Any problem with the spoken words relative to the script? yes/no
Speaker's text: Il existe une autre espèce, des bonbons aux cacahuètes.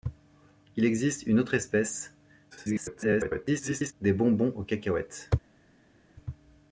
yes